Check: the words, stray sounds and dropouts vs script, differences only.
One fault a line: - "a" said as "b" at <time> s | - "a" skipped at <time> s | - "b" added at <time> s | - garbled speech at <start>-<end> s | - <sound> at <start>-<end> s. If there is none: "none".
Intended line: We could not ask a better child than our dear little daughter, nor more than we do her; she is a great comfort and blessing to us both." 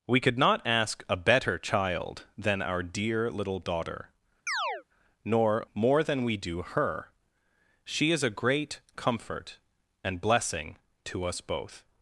- chirp at 4.5-4.8 s